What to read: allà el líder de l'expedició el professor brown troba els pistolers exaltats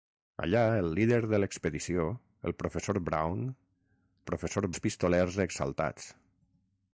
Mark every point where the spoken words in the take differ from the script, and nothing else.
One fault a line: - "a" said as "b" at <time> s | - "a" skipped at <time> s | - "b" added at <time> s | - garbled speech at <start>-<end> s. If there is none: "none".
- "troba" said as "professor" at 4.3 s